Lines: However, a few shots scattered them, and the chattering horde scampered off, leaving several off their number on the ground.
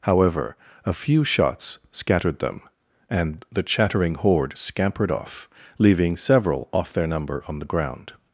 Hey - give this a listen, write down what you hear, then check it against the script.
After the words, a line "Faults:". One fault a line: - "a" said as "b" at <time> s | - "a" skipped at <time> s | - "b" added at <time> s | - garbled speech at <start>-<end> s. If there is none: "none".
However, a few shots scattered them, and the chattering horde scampered off, leaving several off their number on the ground.
Faults:
none